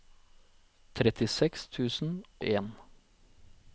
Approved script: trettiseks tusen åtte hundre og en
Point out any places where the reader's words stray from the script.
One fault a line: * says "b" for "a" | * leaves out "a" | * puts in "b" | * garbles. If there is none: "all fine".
* leaves out "åtte hundre"